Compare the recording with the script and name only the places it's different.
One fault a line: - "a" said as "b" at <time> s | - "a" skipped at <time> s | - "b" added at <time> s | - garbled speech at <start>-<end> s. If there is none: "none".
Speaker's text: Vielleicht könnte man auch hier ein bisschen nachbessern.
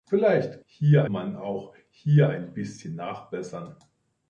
- "könnte" said as "hier" at 0.6 s